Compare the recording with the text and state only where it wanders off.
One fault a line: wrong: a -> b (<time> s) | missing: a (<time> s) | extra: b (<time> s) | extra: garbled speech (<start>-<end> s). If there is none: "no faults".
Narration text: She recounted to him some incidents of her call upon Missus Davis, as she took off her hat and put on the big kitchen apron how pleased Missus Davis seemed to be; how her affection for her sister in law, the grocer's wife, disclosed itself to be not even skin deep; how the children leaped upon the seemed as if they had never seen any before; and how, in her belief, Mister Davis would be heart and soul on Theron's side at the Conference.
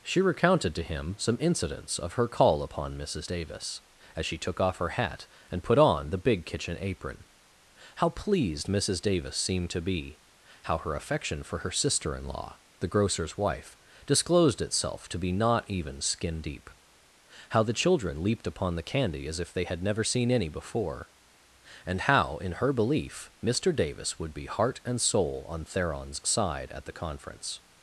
wrong: seemed -> candy (18.8 s)